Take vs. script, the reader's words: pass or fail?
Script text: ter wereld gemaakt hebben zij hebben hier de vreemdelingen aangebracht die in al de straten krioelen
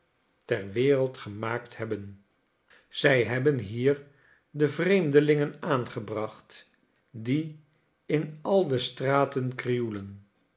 pass